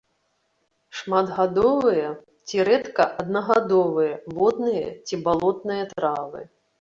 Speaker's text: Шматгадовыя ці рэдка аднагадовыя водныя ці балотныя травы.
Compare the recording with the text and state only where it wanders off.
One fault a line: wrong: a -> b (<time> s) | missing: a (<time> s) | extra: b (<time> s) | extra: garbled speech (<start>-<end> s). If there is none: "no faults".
no faults